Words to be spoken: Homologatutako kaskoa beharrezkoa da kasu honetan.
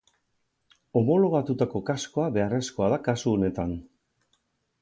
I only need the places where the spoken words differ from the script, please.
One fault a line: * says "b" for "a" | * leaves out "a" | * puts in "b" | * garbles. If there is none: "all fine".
all fine